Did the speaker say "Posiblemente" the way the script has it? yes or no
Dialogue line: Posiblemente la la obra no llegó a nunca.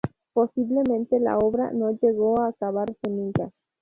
yes